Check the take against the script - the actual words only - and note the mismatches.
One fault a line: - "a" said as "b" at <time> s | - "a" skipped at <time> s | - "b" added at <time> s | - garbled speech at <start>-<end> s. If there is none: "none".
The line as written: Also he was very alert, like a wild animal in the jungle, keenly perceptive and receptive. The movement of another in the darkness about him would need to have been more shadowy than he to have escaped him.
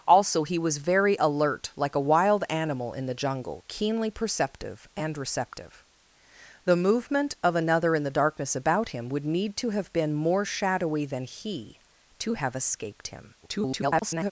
- garbled speech at 13.4-14.3 s